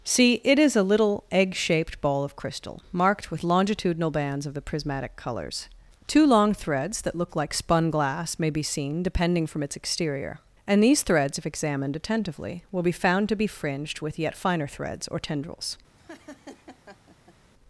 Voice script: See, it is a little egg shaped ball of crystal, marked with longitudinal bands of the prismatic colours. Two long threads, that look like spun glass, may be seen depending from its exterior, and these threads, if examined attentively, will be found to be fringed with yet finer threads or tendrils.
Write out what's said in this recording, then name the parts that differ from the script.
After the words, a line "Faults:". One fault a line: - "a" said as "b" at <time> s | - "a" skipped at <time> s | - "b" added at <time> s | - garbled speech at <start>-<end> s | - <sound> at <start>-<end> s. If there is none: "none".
See, it is a little egg shaped ball of crystal, marked with longitudinal bands of the prismatic colours. Two long threads, that look like spun glass, may be seen depending from its exterior, and these threads, if examined attentively, will be found to be fringed with yet finer threads or tendrils.
Faults:
- laugh at 16.0-17.4 s